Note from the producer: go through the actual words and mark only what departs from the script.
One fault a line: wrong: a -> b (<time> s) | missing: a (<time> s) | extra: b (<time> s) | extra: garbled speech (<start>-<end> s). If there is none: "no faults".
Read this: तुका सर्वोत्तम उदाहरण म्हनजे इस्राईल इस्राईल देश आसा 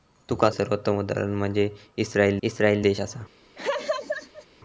no faults